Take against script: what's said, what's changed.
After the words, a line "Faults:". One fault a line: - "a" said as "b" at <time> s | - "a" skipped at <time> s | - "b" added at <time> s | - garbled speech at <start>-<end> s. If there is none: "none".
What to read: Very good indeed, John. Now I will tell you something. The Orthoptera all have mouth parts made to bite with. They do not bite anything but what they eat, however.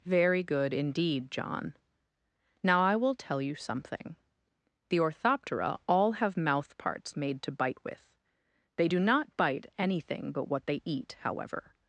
Very good indeed, John. Now I will tell you something. The Orthoptera all have mouth parts made to bite with. They do not bite anything but what they eat, however.
Faults:
none